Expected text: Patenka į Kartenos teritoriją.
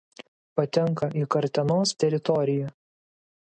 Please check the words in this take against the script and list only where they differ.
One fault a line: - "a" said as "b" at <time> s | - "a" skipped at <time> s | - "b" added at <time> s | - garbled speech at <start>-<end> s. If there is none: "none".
none